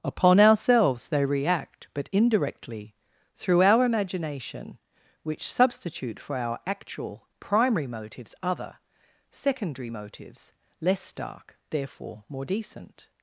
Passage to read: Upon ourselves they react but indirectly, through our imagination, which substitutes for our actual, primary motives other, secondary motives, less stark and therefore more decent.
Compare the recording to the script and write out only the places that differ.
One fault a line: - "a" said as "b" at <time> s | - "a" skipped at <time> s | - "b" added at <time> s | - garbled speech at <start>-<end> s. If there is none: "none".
- "substitutes" said as "substitute" at 5.5 s
- "and" skipped at 11.6 s